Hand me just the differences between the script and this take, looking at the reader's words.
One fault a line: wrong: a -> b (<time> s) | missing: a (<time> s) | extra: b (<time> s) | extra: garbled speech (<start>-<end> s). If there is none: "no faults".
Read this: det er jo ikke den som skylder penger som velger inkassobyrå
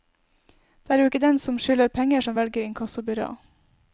no faults